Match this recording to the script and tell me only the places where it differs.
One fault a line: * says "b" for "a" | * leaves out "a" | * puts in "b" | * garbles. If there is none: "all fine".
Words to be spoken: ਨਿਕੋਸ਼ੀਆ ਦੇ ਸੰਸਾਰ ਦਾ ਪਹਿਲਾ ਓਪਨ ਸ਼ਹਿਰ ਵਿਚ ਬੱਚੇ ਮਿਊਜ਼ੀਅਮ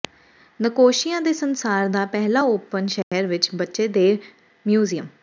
* puts in "ਦੇ"